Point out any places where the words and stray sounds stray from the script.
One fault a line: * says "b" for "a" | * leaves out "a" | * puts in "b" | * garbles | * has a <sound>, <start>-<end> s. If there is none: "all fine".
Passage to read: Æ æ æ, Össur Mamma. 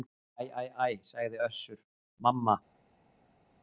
* puts in "sagði"